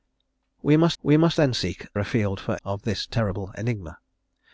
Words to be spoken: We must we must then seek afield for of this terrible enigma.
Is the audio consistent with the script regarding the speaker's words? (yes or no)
yes